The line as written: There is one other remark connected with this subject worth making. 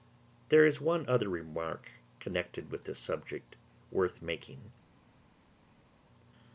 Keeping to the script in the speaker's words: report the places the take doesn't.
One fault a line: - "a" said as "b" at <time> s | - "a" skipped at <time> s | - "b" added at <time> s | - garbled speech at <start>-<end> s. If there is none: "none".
none